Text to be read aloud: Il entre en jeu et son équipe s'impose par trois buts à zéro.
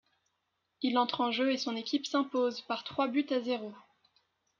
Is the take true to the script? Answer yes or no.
yes